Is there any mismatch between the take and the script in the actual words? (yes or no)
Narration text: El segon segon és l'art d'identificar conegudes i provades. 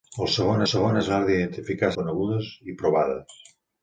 no